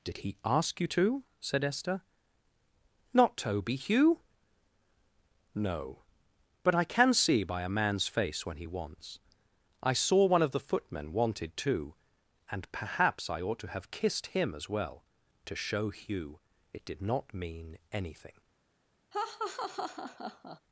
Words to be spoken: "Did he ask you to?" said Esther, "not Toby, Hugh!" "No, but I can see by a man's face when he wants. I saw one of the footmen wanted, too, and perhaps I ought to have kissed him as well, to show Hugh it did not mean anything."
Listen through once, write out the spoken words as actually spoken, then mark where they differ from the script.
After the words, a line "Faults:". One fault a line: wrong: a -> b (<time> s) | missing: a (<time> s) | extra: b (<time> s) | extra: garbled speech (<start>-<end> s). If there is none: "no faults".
"Did he ask you to?" said Esther, "not Toby, Hugh!" "No, but I can see by a man's face when he wants. I saw one of the footmen wanted, too, and perhaps I ought to have kissed him as well, to show Hugh it did not mean anything."
Faults:
no faults